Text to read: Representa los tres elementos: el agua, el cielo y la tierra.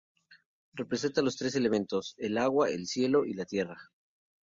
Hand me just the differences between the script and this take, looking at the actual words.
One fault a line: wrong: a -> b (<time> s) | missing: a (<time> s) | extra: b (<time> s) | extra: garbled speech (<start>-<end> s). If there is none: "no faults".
no faults